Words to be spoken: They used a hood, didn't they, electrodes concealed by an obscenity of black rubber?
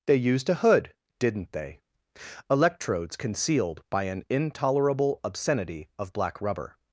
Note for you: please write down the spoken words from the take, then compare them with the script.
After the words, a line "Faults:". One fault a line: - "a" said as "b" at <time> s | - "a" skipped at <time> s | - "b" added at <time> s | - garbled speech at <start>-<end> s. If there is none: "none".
They used a hood, didn't they, electrodes concealed by an intolerable obscenity of black rubber?
Faults:
- "intolerable" added at 4.3 s